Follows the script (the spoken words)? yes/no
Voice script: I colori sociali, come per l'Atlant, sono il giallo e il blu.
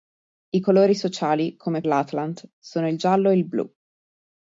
no